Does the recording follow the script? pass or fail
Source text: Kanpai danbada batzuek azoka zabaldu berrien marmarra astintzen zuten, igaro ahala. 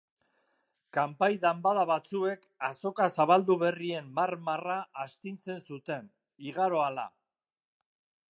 pass